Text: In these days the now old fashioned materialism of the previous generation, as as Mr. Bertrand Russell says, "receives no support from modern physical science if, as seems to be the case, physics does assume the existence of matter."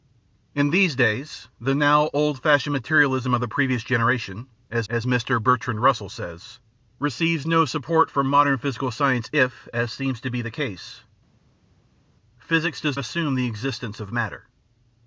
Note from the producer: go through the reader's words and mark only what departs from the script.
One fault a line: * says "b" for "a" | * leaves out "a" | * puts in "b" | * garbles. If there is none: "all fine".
all fine